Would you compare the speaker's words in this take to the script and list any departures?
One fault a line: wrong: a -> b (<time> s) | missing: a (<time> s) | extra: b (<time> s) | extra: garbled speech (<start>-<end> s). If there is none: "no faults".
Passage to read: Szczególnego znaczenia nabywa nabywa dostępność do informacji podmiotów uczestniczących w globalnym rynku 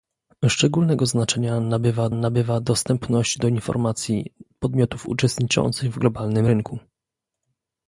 no faults